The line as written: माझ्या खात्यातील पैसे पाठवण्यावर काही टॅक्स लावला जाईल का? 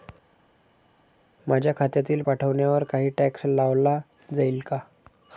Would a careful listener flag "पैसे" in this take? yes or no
yes